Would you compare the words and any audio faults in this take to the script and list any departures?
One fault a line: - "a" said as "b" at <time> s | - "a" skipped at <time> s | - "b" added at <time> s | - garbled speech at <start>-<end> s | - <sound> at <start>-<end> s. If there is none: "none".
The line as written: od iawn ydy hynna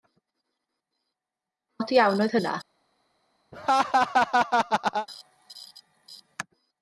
- "ydy" said as "oedd" at 2.2 s
- laugh at 3.5-5.1 s